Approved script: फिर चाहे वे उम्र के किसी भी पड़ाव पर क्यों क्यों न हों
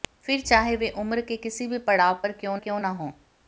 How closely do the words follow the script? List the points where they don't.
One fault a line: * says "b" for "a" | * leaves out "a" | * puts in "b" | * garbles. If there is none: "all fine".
all fine